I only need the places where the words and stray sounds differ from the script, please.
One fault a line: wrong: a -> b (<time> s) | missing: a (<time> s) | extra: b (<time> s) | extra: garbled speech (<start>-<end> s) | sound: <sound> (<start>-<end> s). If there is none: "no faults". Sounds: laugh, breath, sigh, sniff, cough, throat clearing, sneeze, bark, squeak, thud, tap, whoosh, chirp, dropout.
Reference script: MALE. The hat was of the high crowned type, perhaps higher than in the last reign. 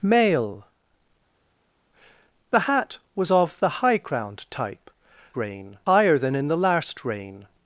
wrong: perhaps -> reign (5.3 s)